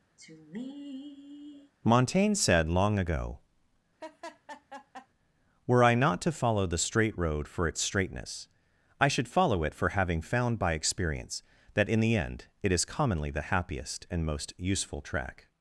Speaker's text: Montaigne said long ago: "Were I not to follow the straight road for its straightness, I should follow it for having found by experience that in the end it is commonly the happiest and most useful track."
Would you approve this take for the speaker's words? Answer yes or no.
yes